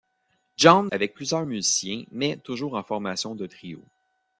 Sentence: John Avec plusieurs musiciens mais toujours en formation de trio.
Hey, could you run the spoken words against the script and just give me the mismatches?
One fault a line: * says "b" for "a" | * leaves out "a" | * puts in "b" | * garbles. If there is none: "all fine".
all fine